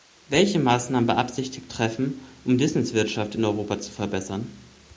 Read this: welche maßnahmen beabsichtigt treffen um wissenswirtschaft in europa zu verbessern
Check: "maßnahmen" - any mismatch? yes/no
no